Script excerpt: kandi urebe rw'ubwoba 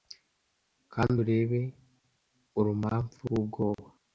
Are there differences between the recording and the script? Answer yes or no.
yes